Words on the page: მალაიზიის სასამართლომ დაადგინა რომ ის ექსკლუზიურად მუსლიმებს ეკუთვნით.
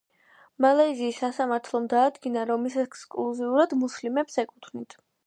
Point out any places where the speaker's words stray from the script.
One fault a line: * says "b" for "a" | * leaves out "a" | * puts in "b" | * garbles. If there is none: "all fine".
all fine